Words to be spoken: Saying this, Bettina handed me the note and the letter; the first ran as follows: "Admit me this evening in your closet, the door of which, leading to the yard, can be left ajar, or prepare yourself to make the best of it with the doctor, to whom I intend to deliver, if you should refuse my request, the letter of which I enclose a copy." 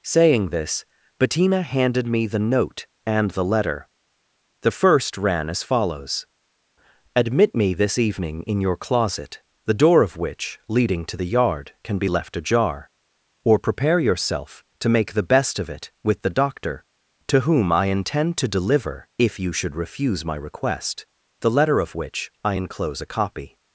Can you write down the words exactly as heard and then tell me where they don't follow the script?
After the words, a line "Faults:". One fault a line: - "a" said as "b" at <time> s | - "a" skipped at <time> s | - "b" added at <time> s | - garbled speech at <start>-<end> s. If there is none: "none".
Saying this, Bettina handed me the note and the letter; the first ran as follows: "Admit me this evening in your closet, the door of which, leading to the yard, can be left ajar, or prepare yourself to make the best of it with the doctor, to whom I intend to deliver, if you should refuse my request, the letter of which I enclose a copy."
Faults:
none